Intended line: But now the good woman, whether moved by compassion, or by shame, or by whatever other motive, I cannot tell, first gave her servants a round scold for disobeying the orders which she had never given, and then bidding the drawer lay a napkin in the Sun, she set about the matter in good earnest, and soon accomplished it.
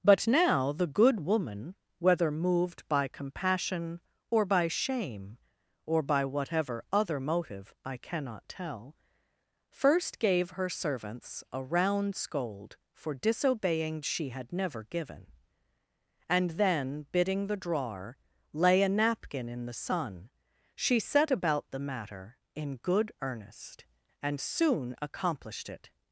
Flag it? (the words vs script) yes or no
yes